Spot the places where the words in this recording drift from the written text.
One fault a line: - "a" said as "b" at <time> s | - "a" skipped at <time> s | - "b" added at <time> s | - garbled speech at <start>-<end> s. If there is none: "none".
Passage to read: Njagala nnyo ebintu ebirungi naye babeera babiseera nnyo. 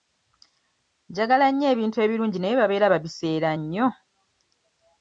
none